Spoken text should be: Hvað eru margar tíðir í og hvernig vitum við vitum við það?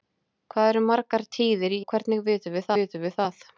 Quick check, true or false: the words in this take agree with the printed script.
true